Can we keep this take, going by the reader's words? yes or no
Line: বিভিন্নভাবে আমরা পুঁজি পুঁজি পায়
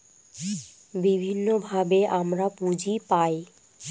no